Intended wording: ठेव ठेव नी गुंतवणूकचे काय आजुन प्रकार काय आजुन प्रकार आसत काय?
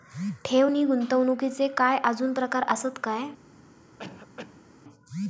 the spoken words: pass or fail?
fail